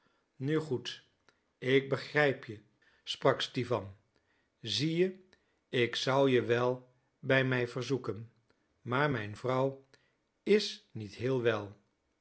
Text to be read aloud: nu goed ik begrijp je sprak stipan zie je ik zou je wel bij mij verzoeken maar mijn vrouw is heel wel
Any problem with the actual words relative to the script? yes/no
yes